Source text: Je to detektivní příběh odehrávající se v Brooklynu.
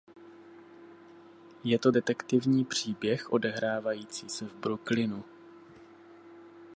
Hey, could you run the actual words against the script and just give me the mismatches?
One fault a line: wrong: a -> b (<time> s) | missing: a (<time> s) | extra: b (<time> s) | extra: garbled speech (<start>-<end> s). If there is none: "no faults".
no faults